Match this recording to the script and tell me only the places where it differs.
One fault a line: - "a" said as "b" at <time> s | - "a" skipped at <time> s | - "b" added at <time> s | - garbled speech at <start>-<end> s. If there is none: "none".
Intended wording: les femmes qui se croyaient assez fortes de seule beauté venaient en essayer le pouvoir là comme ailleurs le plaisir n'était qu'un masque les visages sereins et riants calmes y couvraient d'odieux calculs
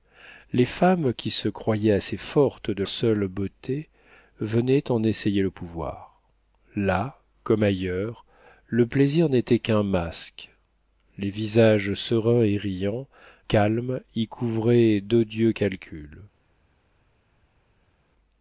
none